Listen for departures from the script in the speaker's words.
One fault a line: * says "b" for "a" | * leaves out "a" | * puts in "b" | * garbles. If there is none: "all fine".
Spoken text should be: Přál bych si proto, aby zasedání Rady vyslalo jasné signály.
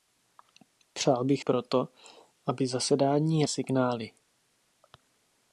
* leaves out "si"
* leaves out "Rady vyslalo jasné"